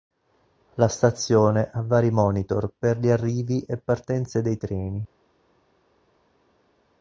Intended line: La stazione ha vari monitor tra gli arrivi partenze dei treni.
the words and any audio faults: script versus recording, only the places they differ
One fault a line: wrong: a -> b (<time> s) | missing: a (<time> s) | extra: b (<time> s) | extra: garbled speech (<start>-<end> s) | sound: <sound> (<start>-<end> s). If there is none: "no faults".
wrong: tra -> per (2.8 s)
extra: e (3.6 s)